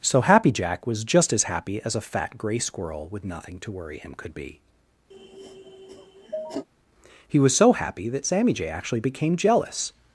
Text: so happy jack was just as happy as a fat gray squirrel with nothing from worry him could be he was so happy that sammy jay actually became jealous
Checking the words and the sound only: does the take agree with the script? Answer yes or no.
no